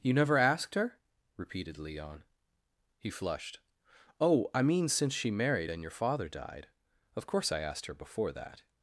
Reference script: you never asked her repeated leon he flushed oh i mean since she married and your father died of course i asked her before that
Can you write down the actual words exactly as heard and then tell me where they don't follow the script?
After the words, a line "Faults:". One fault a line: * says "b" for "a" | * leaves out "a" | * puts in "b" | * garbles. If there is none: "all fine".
you never asked her repeated leon he flushed oh i mean since she married and your father died of course i asked her before that
Faults:
all fine